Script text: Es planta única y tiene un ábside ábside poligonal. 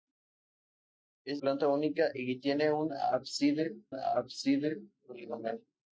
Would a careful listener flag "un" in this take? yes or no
no